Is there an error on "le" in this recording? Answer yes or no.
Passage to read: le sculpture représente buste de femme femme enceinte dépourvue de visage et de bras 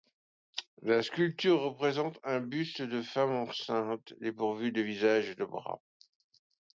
yes